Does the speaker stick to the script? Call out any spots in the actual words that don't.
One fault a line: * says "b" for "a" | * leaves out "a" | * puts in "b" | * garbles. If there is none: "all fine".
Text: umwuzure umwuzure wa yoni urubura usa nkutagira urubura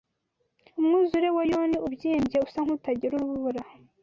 * leaves out "umwuzure"
* says "ubyimbye" for "urubura"